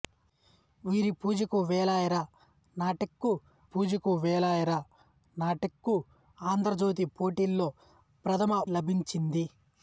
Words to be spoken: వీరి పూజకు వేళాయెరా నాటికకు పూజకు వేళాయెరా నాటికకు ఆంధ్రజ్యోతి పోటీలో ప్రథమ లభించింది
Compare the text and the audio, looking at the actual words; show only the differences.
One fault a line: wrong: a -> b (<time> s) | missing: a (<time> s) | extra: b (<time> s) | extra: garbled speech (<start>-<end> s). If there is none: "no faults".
no faults